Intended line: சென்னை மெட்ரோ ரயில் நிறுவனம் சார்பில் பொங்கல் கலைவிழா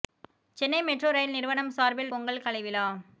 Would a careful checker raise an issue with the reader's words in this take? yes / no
no